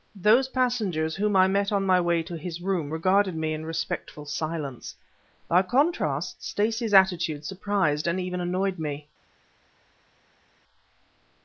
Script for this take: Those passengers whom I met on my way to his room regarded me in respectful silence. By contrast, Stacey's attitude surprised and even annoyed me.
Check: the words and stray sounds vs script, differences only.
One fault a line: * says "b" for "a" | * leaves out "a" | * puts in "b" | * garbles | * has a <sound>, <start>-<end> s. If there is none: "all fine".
all fine